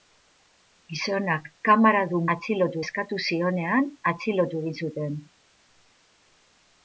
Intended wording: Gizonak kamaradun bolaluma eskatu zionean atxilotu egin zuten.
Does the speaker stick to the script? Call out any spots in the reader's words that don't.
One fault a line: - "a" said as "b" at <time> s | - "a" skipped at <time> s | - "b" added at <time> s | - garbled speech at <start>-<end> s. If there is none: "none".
- "bolaluma" said as "atxilotu" at 2.3 s